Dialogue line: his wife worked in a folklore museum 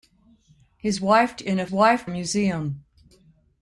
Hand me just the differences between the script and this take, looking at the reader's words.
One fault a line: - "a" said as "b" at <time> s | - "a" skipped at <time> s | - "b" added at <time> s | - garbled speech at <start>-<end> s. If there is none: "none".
- "worked" skipped at 1.4 s
- "folklore" said as "wife" at 1.7 s